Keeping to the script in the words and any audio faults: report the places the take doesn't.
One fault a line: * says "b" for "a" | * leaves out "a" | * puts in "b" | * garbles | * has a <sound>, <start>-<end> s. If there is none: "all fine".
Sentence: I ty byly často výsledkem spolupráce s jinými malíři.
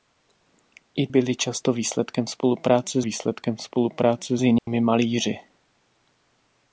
* leaves out "ty"
* puts in "výsledkem spolupráce"
* has a dropout, 4.6-4.7 s